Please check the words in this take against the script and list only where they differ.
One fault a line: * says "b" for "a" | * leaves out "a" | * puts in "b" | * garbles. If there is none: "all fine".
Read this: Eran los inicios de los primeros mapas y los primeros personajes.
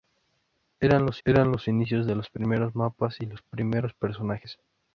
* puts in "eran los"